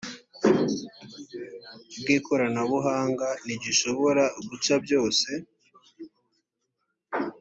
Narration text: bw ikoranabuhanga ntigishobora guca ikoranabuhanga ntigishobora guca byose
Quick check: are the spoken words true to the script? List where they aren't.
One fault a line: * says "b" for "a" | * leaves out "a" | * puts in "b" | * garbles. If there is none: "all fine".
* leaves out "ikoranabuhanga ntigishobora guca"